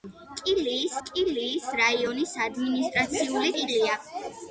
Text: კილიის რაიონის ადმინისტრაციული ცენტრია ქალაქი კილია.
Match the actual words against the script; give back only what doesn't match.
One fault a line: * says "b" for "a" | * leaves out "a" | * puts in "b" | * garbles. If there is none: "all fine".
* puts in "კილიის"
* leaves out "ცენტრია ქალაქი"